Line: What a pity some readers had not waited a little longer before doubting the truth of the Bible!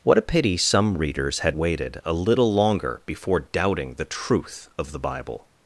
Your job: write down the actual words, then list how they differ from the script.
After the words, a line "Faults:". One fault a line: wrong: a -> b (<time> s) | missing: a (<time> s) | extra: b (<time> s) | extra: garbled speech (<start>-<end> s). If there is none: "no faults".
What a pity some readers had waited a little longer before doubting the truth of the Bible!
Faults:
missing: not (1.6 s)